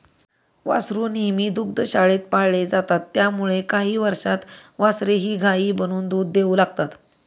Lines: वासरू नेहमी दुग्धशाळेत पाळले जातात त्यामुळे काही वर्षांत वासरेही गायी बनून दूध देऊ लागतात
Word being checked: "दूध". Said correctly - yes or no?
yes